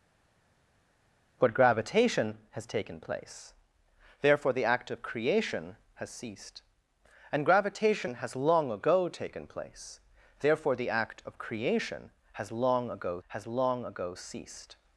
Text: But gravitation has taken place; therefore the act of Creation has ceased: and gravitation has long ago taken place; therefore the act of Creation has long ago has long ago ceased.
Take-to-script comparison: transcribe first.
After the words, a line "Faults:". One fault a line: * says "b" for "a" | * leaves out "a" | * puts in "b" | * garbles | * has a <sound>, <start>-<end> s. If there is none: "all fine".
But gravitation has taken place; therefore the act of Creation has ceased: and gravitation has long ago taken place; therefore the act of Creation has long ago has long ago ceased.
Faults:
all fine